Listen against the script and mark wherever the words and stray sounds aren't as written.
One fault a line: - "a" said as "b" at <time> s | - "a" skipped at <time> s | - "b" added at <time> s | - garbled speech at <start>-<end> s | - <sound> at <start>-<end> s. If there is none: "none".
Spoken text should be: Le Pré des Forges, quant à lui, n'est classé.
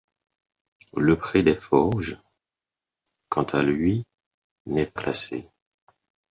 none